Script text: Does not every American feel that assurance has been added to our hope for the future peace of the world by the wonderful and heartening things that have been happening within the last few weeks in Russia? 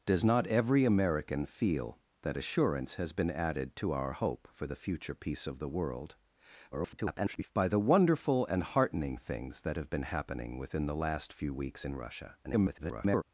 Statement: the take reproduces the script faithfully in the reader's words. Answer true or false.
false